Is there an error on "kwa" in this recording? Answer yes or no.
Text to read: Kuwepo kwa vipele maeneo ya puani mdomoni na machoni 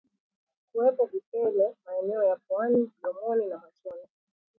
yes